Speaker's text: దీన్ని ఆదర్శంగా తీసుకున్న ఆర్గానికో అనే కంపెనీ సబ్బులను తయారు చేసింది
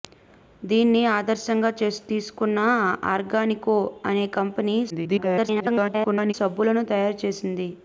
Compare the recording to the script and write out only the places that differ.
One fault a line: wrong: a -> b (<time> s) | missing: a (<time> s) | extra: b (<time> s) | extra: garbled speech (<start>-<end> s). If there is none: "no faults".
extra: garbled speech (4.9-6.3 s)